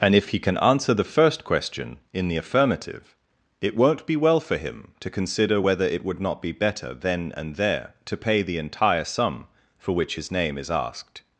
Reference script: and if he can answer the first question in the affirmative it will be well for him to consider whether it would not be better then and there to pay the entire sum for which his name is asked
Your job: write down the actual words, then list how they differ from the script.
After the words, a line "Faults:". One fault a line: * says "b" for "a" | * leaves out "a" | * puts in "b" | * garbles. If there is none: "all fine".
and if he can answer the first question in the affirmative it won't be well for him to consider whether it would not be better then and there to pay the entire sum for which his name is asked
Faults:
* says "won't" for "will"